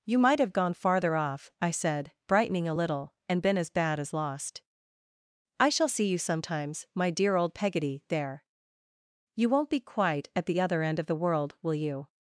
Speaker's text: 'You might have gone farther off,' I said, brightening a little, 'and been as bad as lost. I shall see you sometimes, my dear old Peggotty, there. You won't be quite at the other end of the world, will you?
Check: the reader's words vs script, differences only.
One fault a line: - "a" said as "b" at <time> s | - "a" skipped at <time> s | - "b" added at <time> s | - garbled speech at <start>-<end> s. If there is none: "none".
none